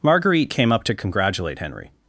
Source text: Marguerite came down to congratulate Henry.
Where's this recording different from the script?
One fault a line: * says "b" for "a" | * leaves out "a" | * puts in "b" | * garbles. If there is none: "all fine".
* says "up" for "down"